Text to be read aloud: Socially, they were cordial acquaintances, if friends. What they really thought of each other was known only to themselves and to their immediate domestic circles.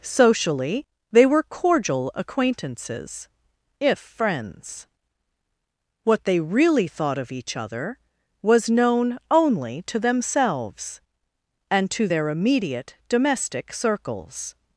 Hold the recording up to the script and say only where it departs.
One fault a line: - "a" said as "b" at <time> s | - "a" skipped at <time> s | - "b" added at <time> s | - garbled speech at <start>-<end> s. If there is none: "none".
none